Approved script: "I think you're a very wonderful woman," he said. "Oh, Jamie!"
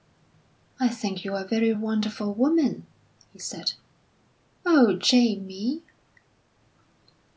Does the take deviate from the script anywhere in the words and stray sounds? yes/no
no